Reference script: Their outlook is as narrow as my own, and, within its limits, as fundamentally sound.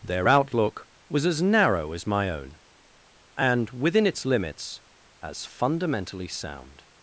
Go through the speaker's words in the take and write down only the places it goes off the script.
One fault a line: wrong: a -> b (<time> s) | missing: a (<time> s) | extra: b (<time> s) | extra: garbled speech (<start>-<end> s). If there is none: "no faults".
wrong: is -> was (1.1 s)